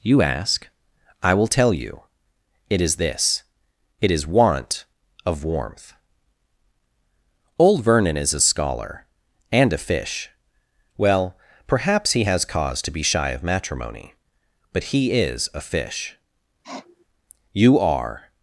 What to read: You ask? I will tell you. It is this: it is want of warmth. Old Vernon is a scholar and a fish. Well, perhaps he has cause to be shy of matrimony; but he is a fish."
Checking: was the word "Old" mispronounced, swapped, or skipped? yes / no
no